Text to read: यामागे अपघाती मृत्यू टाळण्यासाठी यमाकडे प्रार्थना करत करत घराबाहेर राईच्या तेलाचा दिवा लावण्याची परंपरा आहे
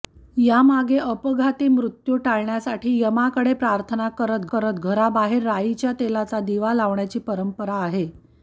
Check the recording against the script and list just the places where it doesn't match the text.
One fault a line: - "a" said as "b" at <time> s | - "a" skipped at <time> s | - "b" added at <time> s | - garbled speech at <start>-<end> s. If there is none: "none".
none